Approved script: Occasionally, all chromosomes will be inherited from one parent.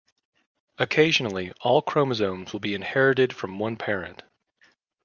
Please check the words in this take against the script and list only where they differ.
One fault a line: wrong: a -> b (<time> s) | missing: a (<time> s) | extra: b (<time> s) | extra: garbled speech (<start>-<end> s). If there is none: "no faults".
no faults